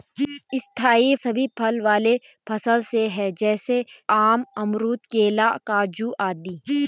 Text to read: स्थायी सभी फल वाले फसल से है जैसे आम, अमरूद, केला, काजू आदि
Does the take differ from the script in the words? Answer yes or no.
no